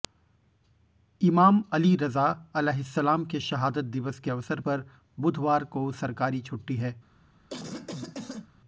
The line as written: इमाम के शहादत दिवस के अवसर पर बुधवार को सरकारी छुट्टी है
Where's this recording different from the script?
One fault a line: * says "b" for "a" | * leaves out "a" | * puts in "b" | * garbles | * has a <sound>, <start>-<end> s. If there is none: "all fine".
* puts in "अली रज़ा अलैहिस्सलाम"
* has a cough, 7.5-8.5 s